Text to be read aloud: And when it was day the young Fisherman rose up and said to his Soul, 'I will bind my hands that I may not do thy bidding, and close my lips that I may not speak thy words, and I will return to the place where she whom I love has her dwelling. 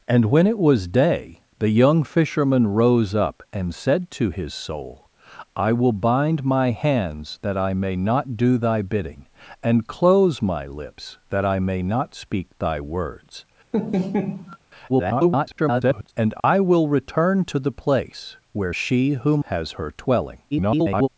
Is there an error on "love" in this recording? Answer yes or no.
yes